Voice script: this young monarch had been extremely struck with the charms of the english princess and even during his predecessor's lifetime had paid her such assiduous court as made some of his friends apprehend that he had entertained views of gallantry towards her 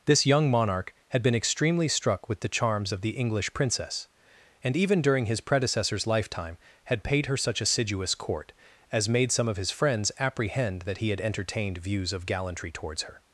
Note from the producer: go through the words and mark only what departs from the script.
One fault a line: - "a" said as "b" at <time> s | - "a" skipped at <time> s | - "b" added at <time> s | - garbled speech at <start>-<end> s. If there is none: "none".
none